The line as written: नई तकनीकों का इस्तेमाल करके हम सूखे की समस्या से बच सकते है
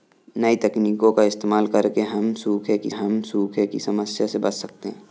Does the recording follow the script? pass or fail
fail